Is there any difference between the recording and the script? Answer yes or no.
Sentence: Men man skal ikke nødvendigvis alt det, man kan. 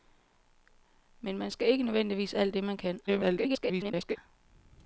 yes